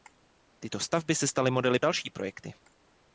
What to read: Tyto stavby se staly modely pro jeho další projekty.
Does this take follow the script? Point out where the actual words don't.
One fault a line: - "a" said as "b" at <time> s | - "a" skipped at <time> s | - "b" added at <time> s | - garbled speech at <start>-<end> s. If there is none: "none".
- "pro jeho" skipped at 1.8 s